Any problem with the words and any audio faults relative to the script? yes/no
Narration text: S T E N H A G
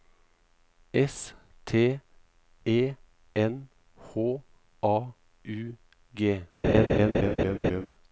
yes